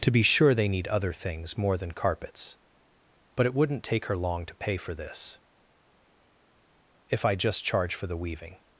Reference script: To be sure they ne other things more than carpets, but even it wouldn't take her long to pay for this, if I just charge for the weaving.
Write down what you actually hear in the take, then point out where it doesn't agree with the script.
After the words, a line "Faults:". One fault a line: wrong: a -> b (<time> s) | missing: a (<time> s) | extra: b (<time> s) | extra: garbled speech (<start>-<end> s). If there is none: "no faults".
To be sure they need other things more than carpets, but it wouldn't take her long to pay for this, if I just charge for the weaving.
Faults:
wrong: ne -> need (0.7 s)
missing: even (3.5 s)